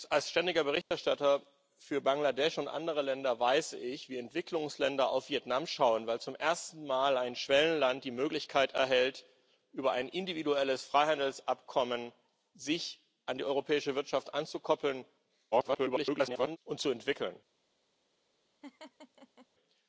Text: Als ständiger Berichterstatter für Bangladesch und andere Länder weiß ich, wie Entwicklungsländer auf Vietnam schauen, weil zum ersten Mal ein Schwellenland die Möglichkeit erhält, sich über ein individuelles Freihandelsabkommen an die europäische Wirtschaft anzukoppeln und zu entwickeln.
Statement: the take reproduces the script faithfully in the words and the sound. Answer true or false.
false